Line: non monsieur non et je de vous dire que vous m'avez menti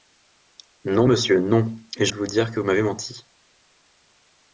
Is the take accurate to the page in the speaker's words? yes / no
yes